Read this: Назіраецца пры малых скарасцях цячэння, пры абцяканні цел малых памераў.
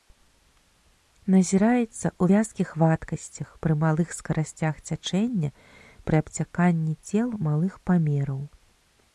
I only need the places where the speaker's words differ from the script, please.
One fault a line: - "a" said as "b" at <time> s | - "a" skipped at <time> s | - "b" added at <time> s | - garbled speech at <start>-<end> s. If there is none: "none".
- "ў вязкіх вадкасцях" added at 2.1 s